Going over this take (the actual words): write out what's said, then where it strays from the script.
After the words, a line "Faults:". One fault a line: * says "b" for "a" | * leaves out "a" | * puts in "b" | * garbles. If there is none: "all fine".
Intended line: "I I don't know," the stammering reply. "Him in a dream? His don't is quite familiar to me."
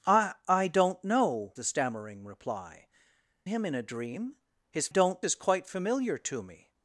"I I don't know," the stammering reply. "Him in a dream? His don't is quite familiar to me."
Faults:
all fine